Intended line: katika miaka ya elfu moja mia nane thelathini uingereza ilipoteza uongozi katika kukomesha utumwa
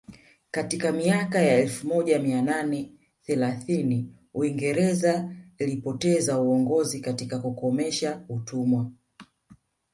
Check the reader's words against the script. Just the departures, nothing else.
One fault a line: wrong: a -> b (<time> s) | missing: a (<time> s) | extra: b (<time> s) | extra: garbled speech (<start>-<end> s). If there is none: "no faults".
no faults